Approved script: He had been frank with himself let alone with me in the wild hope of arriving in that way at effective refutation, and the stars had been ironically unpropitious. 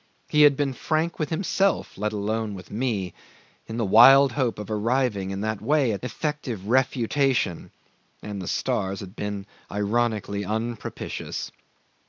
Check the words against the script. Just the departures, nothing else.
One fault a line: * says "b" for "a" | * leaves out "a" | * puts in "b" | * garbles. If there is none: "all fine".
all fine